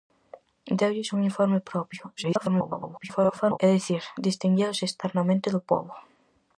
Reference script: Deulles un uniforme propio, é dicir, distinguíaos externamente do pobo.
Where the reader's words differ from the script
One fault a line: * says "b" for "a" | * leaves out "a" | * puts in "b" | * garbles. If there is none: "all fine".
* garbles